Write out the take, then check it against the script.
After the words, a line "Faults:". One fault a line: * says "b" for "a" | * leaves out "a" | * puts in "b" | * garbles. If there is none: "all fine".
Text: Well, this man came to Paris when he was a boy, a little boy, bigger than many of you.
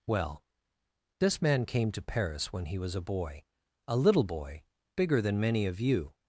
Well, this man came to Paris when he was a boy, a little boy, bigger than many of you.
Faults:
all fine